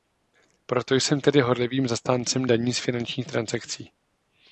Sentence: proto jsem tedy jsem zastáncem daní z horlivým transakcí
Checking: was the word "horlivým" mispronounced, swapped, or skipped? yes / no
yes